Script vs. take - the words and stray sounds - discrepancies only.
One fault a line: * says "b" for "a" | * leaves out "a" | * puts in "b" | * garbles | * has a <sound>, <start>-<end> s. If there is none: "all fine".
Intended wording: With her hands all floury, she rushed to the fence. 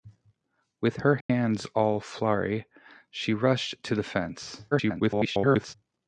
* has a dropout, 1.2-1.3 s
* garbles